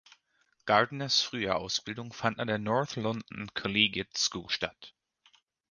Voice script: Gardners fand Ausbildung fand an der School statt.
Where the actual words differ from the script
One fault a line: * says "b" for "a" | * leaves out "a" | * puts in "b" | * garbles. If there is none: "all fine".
* says "frühe" for "fand"
* puts in "North London Collegiate"